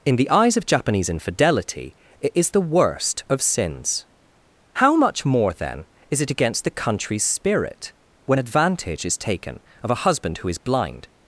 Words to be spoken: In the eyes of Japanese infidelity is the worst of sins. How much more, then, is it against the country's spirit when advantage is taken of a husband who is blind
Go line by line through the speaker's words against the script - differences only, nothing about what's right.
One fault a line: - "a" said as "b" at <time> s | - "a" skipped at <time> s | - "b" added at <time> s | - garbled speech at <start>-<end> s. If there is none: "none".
- "it" added at 2.2 s